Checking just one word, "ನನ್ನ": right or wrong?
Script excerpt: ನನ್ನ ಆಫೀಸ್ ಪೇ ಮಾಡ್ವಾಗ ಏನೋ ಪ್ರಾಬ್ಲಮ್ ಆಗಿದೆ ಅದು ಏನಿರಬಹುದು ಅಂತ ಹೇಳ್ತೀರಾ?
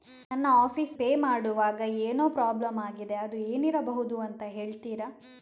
right